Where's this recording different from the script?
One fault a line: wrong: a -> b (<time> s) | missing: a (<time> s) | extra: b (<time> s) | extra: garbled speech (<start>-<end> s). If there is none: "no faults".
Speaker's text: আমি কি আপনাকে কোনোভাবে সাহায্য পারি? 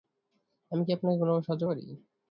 no faults